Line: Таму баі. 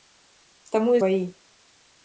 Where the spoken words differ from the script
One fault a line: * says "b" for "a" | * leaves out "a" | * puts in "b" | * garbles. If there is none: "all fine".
all fine